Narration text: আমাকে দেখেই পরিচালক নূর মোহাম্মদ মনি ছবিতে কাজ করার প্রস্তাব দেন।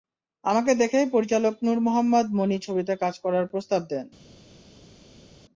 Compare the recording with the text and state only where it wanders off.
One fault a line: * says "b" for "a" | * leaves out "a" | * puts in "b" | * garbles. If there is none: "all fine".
all fine